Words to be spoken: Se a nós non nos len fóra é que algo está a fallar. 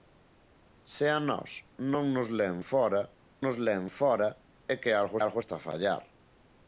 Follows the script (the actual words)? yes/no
no